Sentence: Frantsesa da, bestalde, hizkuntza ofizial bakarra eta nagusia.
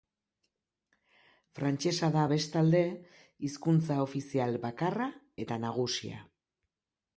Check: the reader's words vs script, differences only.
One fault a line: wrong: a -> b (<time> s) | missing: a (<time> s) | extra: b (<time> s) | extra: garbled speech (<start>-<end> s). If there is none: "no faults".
no faults